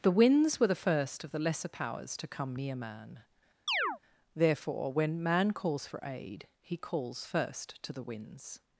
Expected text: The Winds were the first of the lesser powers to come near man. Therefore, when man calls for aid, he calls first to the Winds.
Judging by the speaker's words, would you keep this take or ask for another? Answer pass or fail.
pass